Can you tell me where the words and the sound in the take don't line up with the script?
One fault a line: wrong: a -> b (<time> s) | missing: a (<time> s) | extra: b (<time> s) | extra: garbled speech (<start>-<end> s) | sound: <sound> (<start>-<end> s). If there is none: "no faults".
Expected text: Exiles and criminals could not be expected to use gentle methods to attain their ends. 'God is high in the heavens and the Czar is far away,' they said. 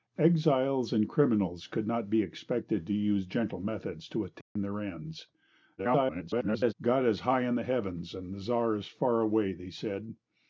sound: dropout (4.4-4.6 s)
extra: garbled speech (5.8-6.7 s)